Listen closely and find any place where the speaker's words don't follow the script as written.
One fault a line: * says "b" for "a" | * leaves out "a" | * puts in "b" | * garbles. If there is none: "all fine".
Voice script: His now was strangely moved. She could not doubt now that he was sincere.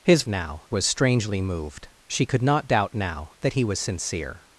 all fine